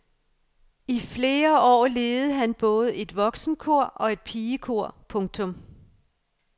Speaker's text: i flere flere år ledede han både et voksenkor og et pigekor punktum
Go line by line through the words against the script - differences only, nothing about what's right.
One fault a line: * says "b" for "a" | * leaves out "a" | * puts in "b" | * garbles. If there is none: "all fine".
* leaves out "flere"